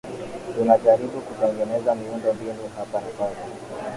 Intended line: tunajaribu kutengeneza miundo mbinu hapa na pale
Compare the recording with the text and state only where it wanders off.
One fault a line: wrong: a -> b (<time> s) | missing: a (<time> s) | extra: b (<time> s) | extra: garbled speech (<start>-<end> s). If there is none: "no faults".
no faults